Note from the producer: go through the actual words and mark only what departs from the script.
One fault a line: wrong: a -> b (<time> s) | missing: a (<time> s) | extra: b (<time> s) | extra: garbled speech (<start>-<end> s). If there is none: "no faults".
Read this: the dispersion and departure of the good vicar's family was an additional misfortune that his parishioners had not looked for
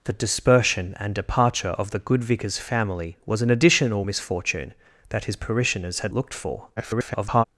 missing: not (6.1 s)
extra: garbled speech (6.8-7.4 s)